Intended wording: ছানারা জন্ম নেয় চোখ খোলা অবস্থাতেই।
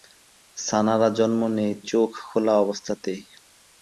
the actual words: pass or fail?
pass